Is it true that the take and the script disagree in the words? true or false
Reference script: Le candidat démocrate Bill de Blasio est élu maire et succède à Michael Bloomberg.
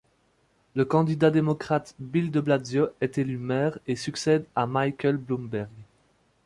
false